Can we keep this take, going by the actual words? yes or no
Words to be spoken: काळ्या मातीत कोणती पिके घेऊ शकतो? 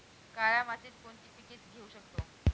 yes